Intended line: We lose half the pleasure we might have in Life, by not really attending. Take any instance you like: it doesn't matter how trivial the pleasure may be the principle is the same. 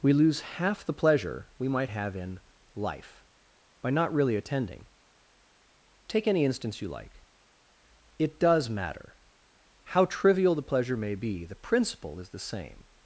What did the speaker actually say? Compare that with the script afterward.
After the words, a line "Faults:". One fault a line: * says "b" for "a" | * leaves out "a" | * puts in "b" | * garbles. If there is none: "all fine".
We lose half the pleasure we might have in Life, by not really attending. Take any instance you like: it does matter how trivial the pleasure may be the principle is the same.
Faults:
* says "does" for "doesn't"